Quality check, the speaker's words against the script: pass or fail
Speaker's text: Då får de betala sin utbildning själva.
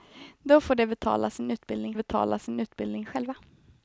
fail